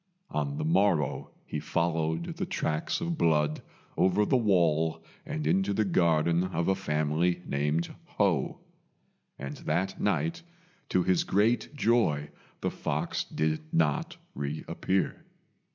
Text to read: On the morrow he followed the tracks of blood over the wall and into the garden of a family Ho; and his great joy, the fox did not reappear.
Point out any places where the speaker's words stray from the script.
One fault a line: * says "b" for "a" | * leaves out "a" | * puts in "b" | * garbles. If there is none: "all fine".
* puts in "named"
* puts in "that night to"